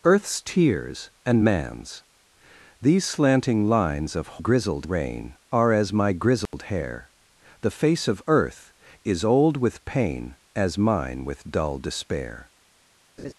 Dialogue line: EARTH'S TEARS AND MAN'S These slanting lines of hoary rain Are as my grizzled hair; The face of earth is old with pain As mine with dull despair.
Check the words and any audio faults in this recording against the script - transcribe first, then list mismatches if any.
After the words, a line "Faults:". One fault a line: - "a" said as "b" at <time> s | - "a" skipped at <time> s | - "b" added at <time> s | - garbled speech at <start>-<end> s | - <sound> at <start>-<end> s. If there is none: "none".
EARTH'S TEARS AND MAN'S These slanting lines of grizzled rain Are as my grizzled hair; The face of earth is old with pain As mine with dull despair.
Faults:
- "hoary" said as "grizzled" at 4.4 s
- dropout at 6.5-6.5 s
- laugh at 13.2-13.3 s